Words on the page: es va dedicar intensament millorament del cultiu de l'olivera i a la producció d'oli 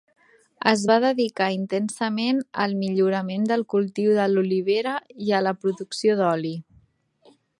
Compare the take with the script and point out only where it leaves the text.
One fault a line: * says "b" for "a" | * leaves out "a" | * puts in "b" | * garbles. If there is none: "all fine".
* puts in "al"